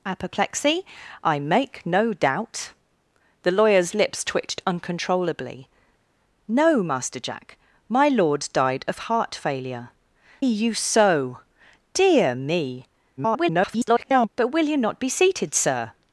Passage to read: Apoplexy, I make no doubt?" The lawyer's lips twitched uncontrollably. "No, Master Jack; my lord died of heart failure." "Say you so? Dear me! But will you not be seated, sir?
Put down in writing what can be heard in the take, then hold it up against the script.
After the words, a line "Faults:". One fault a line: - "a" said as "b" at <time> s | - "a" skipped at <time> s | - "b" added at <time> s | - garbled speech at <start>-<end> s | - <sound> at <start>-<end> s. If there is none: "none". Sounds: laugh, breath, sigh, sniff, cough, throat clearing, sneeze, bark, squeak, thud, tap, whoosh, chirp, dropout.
Apoplexy, I make no doubt?" The lawyer's lips twitched uncontrollably. "No, Master Jack; my lord died of heart failure." "You so? Dear me! [garbled] But will you not be seated, sir?
Faults:
- "Say" skipped at 9.9 s
- garbled speech at 13.2-14.3 s